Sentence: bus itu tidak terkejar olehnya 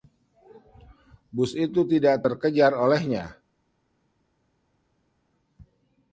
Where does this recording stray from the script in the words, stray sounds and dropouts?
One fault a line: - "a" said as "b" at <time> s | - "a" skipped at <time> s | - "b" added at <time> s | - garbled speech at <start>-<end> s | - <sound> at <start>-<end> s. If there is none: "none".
none